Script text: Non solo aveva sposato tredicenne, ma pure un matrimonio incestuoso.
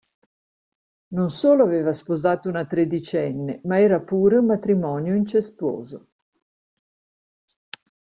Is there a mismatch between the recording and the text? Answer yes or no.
yes